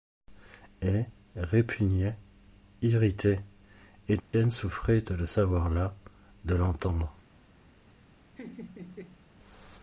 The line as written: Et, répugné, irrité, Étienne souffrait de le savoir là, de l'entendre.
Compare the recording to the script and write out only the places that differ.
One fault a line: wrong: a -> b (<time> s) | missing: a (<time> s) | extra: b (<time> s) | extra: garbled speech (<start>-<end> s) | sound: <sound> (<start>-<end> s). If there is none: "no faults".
sound: dropout (4.2-4.3 s)
sound: laugh (8.3-9.3 s)